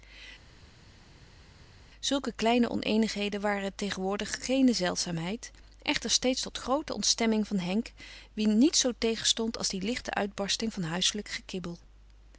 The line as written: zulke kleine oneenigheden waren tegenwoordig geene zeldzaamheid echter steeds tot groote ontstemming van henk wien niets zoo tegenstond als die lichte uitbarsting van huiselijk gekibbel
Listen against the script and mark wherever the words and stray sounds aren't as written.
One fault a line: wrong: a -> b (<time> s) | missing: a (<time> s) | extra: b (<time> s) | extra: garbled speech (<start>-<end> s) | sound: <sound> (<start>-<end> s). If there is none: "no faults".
no faults